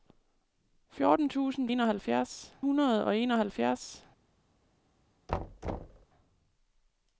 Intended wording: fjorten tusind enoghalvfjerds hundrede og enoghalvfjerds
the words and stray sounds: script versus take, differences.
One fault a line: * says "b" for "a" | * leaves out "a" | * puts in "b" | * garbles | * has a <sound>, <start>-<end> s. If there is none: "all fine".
* has a thud, 5.3-6.1 s